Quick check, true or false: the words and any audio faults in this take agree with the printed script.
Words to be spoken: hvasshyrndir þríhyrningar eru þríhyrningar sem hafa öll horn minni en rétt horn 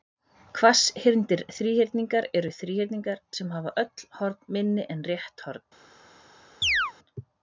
false